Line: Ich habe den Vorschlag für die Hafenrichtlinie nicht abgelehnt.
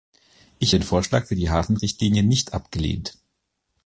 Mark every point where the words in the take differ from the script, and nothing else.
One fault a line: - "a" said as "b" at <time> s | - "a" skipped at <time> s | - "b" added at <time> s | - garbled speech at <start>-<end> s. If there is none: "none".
- "habe" skipped at 0.8 s